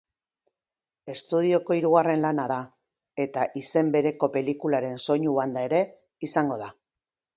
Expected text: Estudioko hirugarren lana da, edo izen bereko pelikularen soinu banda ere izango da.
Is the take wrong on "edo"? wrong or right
wrong